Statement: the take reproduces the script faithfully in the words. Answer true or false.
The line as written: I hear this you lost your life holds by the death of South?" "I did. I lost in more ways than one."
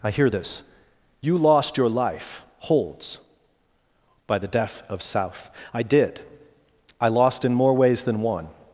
true